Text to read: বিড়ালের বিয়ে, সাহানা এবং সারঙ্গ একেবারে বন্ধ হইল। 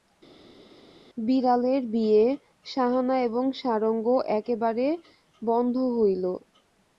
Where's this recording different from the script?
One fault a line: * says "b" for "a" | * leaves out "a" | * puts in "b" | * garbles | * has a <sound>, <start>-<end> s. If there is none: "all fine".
all fine